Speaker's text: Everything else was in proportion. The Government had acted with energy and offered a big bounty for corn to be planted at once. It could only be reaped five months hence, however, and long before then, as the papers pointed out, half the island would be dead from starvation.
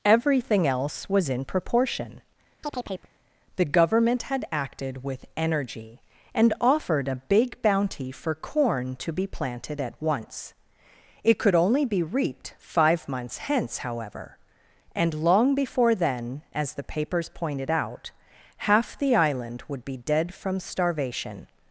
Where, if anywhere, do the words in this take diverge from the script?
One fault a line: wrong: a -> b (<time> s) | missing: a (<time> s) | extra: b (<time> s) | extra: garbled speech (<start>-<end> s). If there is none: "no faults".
no faults